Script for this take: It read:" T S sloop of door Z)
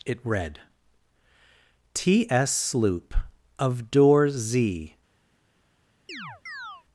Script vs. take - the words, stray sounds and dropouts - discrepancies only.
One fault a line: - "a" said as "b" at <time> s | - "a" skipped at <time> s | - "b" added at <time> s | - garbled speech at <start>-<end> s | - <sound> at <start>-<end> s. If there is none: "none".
- chirp at 6.1-6.8 s